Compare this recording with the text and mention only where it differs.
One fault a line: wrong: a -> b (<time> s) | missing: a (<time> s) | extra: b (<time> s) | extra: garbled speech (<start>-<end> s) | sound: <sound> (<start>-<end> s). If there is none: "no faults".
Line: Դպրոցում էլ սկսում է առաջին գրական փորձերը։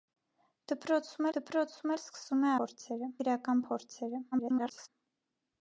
extra: դպրոցում (1.4 s)
wrong: առաջին -> փորձերը (2.6 s)
extra: garbled speech (4.3-4.9 s)